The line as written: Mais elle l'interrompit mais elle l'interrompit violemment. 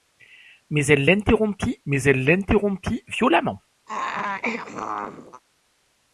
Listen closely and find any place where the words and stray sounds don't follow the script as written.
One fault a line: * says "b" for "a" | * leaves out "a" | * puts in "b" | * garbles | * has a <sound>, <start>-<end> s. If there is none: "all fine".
* has a throat clearing, 3.9-5.4 s